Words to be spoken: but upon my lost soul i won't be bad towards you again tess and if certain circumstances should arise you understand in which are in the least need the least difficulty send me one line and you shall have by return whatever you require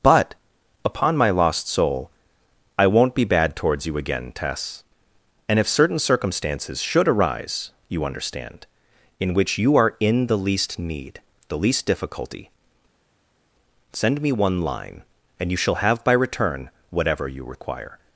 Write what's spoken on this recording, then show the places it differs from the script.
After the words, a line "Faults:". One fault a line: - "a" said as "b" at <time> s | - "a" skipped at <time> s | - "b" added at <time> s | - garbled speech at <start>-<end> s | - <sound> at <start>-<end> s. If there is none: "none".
but upon my lost soul i won't be bad towards you again tess and if certain circumstances should arise you understand in which you are in the least need the least difficulty send me one line and you shall have by return whatever you require
Faults:
- "you" added at 9.6 s